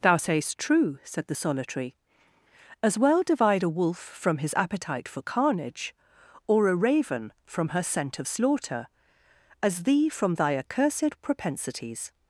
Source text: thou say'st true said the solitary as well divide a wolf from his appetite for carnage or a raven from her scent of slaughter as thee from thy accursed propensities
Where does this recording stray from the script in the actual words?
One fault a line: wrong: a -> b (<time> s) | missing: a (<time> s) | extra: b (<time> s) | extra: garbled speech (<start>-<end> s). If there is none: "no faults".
no faults